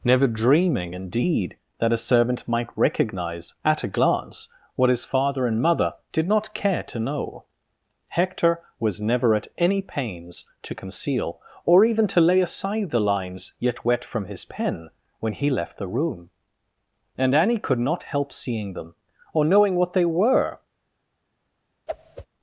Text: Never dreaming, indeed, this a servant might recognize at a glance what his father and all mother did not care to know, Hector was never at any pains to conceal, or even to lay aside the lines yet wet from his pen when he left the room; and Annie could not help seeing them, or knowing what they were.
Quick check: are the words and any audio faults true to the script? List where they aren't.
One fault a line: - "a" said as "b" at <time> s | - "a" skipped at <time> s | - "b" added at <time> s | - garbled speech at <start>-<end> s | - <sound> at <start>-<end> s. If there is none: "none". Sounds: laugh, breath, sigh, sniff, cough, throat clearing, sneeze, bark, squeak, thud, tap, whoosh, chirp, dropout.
- "this" said as "that" at 1.8 s
- "all" skipped at 5.6 s
- whoosh at 21.9-22.3 s